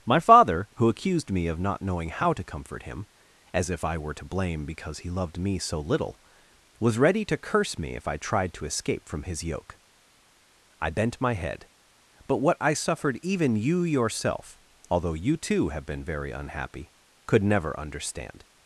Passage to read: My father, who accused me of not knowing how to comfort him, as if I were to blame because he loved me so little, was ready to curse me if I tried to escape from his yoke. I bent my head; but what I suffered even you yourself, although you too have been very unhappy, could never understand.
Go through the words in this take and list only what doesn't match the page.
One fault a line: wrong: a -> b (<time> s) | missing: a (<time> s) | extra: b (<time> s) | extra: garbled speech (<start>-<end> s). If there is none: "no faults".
no faults